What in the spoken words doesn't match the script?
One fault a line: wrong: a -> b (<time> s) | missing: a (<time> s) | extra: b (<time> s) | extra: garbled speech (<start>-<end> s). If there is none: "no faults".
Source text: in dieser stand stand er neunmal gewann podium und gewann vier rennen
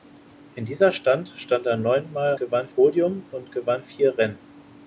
no faults